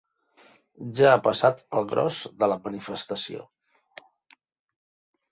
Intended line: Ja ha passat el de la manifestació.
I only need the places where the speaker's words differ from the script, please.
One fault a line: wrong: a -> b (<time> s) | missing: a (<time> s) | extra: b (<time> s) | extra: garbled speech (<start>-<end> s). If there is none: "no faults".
extra: gros (1.9 s)